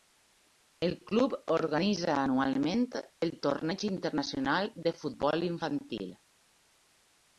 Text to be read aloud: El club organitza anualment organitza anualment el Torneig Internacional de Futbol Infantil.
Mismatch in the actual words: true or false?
true